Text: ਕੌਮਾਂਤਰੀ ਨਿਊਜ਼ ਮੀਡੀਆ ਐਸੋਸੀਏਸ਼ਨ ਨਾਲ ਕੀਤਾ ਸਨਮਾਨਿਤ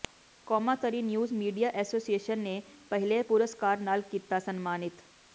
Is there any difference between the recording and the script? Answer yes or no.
yes